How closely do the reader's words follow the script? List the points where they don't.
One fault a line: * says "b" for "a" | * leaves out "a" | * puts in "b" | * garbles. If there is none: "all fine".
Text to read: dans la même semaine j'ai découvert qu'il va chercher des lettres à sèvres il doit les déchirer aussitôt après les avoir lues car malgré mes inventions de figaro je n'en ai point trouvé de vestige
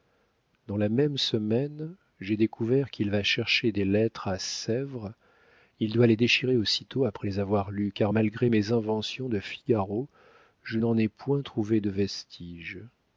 all fine